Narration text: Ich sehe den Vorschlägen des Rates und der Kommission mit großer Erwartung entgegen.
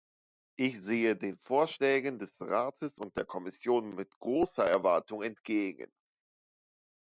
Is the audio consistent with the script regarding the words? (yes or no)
yes